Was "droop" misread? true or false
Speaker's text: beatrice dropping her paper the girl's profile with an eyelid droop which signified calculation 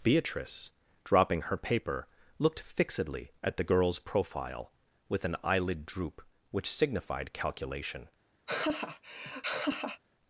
false